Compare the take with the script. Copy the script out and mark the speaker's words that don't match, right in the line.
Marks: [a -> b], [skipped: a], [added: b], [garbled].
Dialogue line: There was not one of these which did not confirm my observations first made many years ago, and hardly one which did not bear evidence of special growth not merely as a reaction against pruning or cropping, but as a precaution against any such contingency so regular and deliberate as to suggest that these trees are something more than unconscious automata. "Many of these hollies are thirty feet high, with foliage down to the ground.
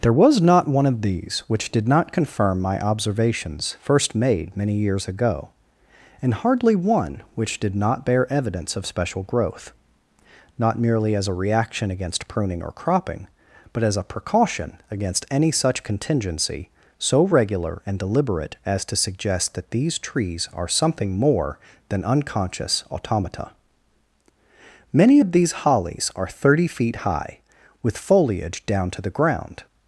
There was not one of these which did not confirm my observations first made many years ago, and hardly one which did not bear evidence of special growth not merely as a reaction against pruning or cropping, but as a precaution against any such contingency so regular and deliberate as to suggest that these trees are something more than unconscious automata. "Many of these hollies are thirty feet high, with foliage down to the ground.